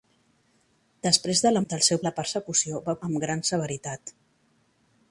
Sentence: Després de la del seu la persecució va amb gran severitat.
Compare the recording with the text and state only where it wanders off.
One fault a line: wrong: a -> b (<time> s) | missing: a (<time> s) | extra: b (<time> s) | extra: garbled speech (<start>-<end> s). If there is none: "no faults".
no faults